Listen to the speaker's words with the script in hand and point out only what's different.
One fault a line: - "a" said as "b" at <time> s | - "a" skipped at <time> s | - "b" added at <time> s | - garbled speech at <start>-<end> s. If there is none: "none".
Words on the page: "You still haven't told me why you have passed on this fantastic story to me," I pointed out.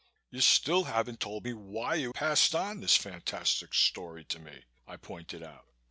- "have" skipped at 2.1 s